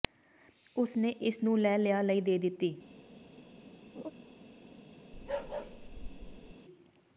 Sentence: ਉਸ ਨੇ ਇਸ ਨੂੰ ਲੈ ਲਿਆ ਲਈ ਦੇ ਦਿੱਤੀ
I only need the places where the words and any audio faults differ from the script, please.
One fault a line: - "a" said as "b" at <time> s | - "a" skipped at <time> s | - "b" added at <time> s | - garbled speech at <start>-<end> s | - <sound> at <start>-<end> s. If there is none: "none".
- laugh at 4.0-4.1 s
- bark at 5.1-6.5 s